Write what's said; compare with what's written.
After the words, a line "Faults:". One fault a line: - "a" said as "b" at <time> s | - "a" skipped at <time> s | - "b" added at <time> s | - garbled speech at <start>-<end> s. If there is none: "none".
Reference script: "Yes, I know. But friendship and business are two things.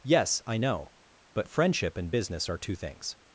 "Yes, I know. But friendship and business are two things.
Faults:
none